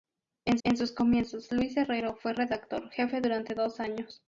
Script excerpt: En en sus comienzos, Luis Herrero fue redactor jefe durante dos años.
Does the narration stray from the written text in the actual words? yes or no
no